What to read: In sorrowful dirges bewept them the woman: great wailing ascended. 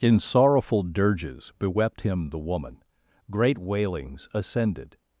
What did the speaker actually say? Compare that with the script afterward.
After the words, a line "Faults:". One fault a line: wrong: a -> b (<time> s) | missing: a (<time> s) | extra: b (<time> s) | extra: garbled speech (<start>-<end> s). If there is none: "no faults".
In sorrowful dirges bewept him the woman: great wailings ascended.
Faults:
wrong: them -> him (2.0 s)
wrong: wailing -> wailings (3.6 s)